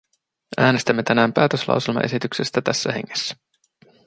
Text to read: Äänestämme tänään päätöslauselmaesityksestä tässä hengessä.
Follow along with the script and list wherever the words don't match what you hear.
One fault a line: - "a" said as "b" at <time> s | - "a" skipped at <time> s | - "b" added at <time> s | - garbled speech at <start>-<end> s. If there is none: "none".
none